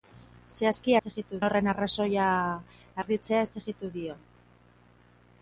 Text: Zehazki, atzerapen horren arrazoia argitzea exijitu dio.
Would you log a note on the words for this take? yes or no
yes